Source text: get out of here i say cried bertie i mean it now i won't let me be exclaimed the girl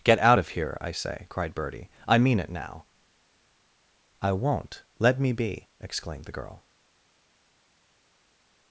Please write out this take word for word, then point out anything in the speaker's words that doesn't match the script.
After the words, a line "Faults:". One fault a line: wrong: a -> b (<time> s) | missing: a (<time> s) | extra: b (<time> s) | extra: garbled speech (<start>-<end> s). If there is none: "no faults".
get out of here i say cried bertie i mean it now i won't let me be exclaimed the girl
Faults:
no faults